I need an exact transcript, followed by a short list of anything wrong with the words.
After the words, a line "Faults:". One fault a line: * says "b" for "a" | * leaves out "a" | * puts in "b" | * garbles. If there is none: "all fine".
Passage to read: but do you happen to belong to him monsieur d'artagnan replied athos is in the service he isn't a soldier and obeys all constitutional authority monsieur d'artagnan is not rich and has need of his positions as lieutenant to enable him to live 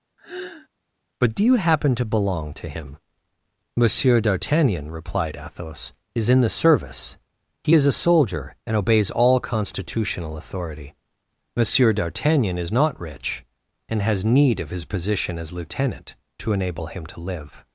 but do you happen to belong to him monsieur d'artagnan replied athos is in the service he is a soldier and obeys all constitutional authority monsieur d'artagnan is not rich and has need of his position as lieutenant to enable him to live
Faults:
* says "is" for "isn't"
* says "position" for "positions"